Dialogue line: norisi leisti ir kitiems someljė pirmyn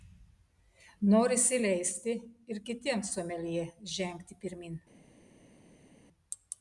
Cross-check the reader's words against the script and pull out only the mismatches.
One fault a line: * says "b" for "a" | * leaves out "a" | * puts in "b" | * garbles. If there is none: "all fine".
* puts in "žengti"